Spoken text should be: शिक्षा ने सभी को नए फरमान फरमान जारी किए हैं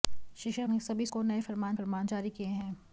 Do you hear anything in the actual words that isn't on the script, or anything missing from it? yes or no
no